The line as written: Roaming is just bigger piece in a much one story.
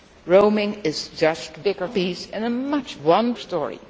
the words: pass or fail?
pass